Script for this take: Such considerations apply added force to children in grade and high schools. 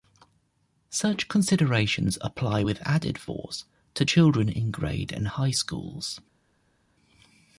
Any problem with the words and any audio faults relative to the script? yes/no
yes